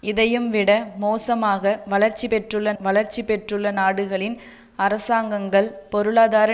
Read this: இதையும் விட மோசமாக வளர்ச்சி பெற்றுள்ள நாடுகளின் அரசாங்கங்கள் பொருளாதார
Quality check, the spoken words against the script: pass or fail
fail